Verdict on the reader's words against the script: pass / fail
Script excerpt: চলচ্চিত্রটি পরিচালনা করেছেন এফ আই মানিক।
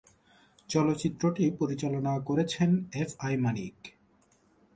pass